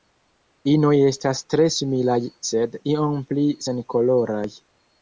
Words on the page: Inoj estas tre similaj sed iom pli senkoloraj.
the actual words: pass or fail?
pass